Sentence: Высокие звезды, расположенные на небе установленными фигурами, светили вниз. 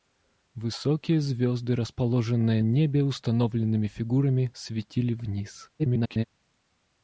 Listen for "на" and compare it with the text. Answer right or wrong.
wrong